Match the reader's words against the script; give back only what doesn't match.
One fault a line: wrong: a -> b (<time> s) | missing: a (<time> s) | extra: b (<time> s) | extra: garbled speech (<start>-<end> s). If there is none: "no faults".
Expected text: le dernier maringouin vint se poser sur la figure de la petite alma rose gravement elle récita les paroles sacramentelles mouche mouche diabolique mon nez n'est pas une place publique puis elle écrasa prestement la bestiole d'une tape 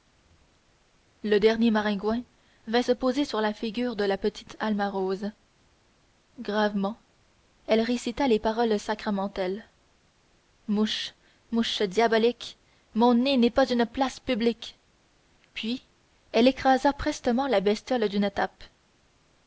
no faults